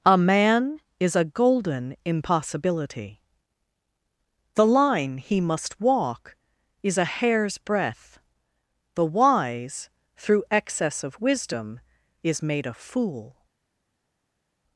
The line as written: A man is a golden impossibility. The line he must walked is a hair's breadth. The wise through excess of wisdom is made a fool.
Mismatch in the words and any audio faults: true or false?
true